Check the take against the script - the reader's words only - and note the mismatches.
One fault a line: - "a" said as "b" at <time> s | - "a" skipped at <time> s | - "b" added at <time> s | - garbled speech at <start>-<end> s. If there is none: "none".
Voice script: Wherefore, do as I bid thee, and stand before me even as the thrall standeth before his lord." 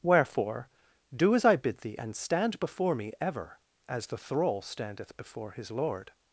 - "even" said as "ever" at 3.2 s